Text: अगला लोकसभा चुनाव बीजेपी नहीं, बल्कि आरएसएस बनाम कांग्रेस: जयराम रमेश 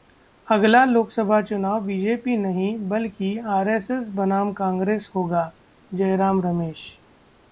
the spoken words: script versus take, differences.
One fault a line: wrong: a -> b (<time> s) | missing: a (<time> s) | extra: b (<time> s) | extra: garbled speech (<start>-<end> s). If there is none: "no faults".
extra: होगा (5.2 s)